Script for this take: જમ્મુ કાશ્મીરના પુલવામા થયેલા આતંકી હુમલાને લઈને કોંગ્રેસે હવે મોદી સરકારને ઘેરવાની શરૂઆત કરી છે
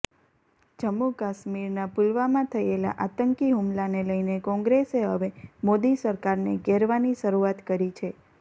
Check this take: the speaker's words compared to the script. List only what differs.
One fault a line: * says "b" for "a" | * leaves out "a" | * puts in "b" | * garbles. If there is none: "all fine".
all fine